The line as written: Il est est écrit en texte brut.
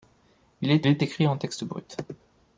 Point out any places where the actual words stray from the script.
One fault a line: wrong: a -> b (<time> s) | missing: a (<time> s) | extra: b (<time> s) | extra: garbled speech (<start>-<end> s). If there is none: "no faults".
no faults